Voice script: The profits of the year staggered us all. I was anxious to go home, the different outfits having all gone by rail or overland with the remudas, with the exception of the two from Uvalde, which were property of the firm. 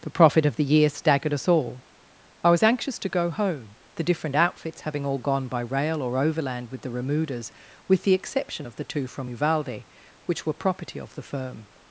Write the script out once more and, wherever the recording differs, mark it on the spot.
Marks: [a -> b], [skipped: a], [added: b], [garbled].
The [profits -> profit] of the year staggered us all. I was anxious to go home, the different outfits having all gone by rail or overland with the remudas, with the exception of the two from Uvalde, which were property of the firm.